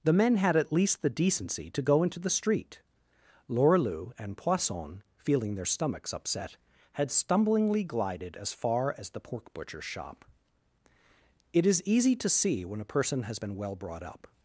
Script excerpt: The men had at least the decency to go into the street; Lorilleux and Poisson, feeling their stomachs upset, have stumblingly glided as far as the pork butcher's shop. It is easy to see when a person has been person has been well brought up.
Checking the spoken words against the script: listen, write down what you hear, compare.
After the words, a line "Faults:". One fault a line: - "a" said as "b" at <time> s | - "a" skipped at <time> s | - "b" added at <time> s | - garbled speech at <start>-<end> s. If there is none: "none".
The men had at least the decency to go into the street; Lorilleux and Poisson, feeling their stomachs upset, had stumblingly glided as far as the pork butcher's shop. It is easy to see when a person has been well brought up.
Faults:
- "have" said as "had" at 6.9 s
- "person has been" skipped at 13.6 s